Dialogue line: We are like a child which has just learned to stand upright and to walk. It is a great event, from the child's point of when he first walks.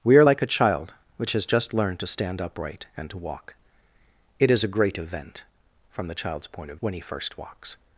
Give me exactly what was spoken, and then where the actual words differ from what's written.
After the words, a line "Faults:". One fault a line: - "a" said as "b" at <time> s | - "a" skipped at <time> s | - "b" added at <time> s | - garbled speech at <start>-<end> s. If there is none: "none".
We are like a child which has just learned to stand upright and to walk. It is a great event, from the child's point of when he first walks.
Faults:
none